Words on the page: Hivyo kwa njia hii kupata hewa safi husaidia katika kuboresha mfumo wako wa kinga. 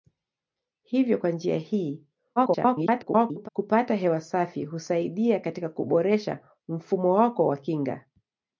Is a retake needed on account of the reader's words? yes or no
yes